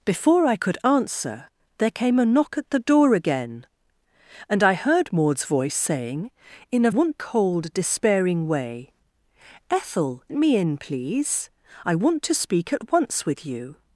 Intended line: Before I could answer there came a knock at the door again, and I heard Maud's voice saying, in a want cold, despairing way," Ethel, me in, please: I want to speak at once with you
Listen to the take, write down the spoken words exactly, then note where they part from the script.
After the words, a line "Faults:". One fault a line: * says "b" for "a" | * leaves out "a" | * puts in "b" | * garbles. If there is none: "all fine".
Before I could answer there came a knock at the door again, and I heard Maud's voice saying, in a want cold, despairing way," Ethel, me in, please: I want to speak at once with you
Faults:
all fine